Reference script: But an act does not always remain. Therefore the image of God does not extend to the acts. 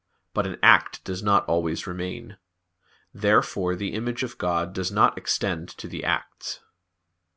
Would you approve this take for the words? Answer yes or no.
yes